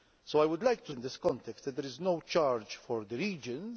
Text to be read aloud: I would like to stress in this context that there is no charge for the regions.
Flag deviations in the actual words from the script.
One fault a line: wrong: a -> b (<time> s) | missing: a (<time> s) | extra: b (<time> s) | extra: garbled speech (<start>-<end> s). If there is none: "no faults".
missing: stress (0.9 s)